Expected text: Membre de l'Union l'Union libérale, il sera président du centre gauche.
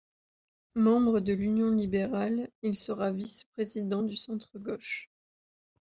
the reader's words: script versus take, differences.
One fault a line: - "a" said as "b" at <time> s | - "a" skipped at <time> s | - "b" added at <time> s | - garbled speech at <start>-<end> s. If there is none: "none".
- "l'Union" skipped at 1.7 s
- "vice" added at 3.1 s